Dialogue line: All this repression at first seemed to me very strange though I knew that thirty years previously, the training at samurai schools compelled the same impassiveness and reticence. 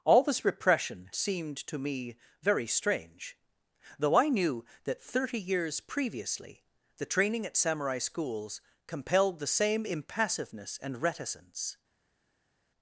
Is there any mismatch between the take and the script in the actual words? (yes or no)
yes